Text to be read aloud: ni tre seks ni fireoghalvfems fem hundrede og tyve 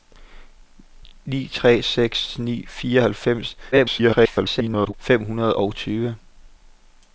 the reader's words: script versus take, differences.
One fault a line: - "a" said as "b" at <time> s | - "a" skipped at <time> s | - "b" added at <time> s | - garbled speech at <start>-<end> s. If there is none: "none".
- garbled speech at 3.7-4.9 s